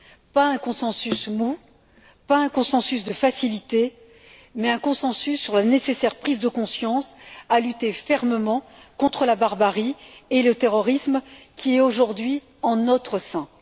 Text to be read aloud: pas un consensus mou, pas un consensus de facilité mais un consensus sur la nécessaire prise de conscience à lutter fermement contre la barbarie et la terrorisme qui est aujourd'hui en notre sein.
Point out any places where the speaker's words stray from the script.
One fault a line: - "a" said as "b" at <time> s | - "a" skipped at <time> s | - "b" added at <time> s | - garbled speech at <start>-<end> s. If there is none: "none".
- "la" said as "le" at 10.4 s